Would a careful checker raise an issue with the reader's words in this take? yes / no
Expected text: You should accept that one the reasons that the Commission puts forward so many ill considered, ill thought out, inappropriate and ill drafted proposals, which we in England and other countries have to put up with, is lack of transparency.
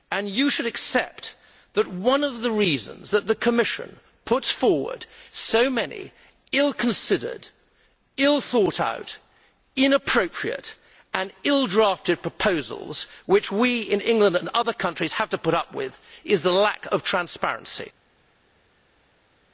yes